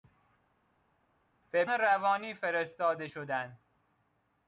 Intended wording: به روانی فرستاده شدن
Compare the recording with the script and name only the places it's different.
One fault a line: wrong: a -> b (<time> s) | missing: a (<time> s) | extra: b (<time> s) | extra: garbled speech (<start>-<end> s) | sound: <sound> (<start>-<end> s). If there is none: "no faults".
no faults